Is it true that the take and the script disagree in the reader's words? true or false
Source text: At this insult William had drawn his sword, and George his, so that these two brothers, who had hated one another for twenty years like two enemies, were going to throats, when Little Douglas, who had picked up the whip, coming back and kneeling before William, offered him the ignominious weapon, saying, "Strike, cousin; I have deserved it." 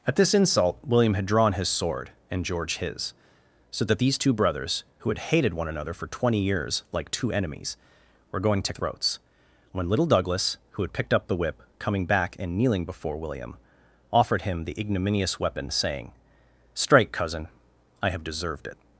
false